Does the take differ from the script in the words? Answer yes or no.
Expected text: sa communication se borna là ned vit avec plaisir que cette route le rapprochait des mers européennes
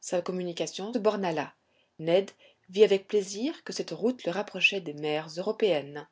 yes